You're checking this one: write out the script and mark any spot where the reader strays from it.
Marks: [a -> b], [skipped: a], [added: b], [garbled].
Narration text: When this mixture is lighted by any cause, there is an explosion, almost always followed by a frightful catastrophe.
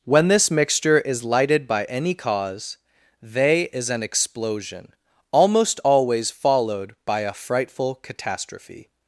When this mixture is lighted by any cause, [there -> they] is an explosion, almost always followed by a frightful catastrophe.